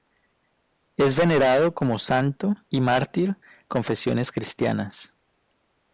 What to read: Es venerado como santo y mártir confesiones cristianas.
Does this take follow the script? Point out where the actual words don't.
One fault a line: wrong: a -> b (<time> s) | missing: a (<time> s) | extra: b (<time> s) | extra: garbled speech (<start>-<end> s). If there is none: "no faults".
no faults